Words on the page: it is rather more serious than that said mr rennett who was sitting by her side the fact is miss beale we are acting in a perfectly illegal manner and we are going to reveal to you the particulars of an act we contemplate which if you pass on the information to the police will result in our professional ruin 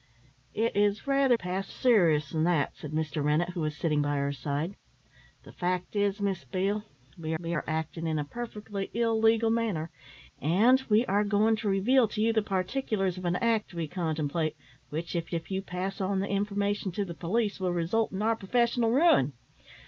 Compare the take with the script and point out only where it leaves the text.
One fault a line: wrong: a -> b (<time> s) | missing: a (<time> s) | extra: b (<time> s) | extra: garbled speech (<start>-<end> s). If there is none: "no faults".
wrong: more -> pass (1.3 s)
extra: we (7.4 s)
extra: if (15.3 s)